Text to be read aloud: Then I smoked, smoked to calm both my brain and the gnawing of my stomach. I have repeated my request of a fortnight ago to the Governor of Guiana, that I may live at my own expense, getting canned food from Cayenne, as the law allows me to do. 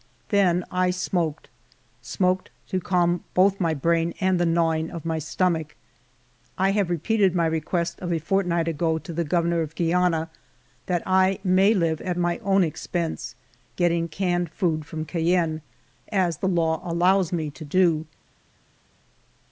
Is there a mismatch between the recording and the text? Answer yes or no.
no